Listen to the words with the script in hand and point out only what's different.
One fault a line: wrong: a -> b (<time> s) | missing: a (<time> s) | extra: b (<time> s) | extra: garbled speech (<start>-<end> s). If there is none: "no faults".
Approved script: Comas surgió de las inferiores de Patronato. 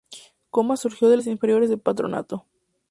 no faults